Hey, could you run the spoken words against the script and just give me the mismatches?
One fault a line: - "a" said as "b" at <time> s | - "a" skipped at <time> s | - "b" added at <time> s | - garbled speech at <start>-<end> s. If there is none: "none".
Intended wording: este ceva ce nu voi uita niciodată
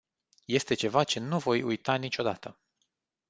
none